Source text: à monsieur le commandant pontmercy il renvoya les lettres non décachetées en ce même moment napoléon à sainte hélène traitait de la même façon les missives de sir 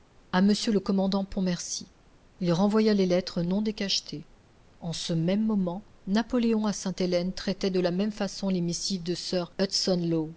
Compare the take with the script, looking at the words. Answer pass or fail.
pass